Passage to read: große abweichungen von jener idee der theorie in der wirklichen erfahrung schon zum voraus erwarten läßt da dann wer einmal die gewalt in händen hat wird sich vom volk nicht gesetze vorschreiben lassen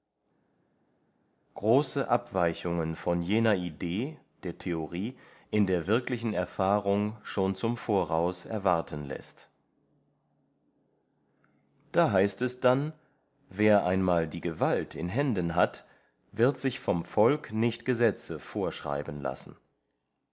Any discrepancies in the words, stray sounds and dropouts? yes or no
yes